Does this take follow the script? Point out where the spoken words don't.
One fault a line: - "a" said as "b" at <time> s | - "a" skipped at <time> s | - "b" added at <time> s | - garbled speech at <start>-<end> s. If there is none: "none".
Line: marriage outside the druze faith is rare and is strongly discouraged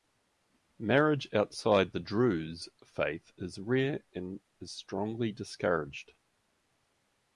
none